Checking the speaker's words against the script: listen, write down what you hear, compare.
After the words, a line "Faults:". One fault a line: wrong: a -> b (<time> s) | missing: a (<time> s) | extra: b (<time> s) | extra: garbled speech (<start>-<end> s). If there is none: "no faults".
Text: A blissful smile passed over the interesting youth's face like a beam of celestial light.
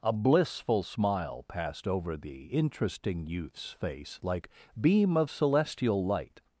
A blissful smile passed over the interesting youth's face like beam of celestial light.
Faults:
missing: a (4.5 s)